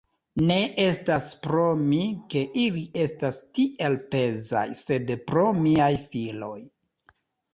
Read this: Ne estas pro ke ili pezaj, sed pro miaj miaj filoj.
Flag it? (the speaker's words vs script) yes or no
yes